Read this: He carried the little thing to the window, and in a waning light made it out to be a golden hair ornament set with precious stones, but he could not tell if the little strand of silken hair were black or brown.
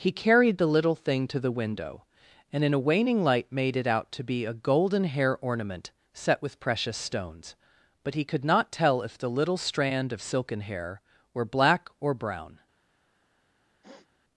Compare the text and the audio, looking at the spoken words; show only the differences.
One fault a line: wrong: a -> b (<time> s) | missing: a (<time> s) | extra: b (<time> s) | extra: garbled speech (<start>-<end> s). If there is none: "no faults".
no faults